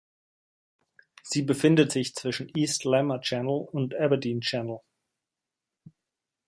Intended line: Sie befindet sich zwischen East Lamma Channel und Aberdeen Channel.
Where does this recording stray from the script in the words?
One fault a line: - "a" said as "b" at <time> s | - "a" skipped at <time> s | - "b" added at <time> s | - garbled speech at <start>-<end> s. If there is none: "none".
none